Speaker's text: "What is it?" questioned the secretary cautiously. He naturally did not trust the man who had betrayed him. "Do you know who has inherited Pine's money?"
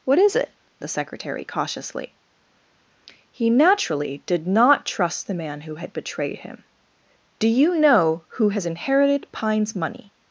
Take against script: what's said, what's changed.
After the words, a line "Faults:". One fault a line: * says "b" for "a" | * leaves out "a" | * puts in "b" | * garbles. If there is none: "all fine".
"What is it?" the secretary cautiously. He naturally did not trust the man who had betrayed him. "Do you know who has inherited Pine's money?"
Faults:
* leaves out "questioned"